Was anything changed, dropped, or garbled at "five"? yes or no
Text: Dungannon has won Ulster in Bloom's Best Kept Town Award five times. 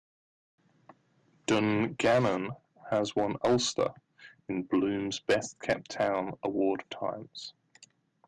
yes